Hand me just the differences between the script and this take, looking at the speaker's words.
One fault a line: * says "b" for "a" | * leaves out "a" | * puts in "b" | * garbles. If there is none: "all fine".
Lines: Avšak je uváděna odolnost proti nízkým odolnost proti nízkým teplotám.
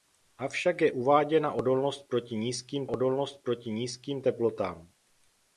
all fine